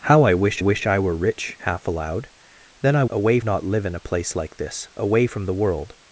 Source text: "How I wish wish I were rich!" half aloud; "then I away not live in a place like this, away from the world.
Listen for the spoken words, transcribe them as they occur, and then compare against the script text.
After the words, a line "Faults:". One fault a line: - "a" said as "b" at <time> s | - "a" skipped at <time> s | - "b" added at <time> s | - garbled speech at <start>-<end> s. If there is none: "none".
"How I wish wish I were rich!" half aloud; "then I away not live in a place like this, away from the world.
Faults:
none